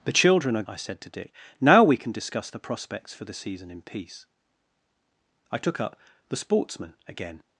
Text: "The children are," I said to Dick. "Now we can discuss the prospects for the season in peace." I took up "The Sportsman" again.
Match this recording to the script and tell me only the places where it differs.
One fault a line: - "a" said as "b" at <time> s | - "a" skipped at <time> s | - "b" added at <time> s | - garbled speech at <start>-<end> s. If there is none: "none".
none